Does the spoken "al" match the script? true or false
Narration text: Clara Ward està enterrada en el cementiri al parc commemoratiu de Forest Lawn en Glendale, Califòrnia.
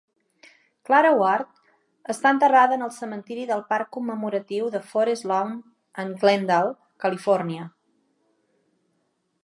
false